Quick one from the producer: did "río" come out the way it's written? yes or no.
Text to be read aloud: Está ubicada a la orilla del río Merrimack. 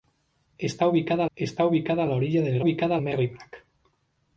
no